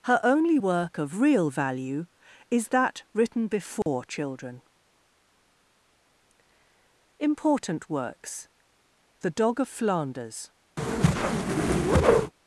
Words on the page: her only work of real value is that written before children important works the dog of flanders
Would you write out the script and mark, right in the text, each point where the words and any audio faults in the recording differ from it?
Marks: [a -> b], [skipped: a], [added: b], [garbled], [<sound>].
her only work of real value is that written before [dropout] children important works the dog of flanders [whoosh]